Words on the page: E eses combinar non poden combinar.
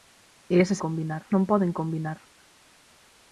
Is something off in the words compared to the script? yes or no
no